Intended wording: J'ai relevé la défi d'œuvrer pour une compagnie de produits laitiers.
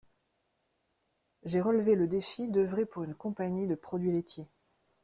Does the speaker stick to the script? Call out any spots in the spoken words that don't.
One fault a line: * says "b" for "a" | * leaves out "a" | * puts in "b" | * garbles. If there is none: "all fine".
* says "le" for "la"